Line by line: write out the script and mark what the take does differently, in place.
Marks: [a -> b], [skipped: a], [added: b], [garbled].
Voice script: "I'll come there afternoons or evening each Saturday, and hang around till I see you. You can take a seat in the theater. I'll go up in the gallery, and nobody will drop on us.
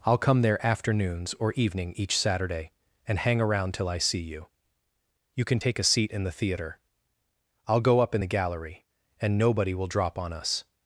"I'll come there afternoons or evening each Saturday, and hang around till I see you. You can take a seat in the theater. I'll go up in the gallery, and nobody will drop on us.